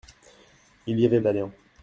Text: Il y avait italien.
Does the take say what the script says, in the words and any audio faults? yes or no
yes